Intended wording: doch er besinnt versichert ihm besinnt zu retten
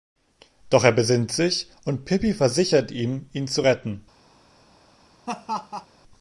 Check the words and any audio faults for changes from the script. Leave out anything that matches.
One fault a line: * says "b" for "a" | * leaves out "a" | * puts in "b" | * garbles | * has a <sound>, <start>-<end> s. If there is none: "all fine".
* puts in "sich und pippi"
* says "ihn" for "besinnt"
* has a laugh, 5.3-5.9 s